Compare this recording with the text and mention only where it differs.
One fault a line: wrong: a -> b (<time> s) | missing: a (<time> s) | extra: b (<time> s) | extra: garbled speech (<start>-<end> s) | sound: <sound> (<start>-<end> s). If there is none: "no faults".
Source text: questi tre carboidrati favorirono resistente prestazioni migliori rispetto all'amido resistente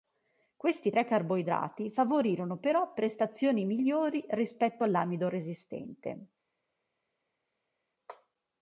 wrong: resistente -> però (2.6 s)